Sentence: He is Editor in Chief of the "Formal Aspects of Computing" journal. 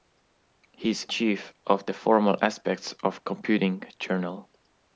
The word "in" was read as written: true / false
false